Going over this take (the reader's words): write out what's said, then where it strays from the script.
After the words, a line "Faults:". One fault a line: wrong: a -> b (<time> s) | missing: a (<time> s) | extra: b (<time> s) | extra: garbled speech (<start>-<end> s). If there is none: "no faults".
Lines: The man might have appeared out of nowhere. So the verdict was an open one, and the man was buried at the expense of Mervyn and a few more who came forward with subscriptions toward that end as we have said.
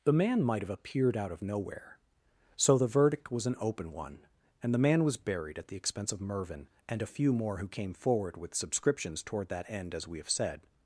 The man might have appeared out of nowhere. So the verdict was an open one, and the man was buried at the expense of Mervyn and a few more who came forward with subscriptions toward that end as we have said.
Faults:
no faults